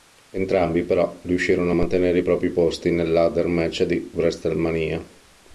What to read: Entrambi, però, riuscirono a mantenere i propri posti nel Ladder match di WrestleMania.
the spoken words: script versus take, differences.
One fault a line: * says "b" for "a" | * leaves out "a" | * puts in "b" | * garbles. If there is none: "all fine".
all fine